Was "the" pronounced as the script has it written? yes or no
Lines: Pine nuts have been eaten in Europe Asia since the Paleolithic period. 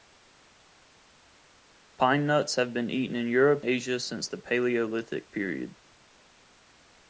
yes